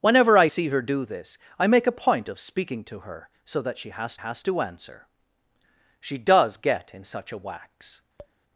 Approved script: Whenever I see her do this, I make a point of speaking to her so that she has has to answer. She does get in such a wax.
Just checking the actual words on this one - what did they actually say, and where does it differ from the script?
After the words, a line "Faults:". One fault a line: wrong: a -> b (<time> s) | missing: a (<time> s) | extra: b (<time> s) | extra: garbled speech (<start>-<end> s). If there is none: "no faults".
Whenever I see her do this, I make a point of speaking to her so that she has has to answer. She does get in such a wax.
Faults:
no faults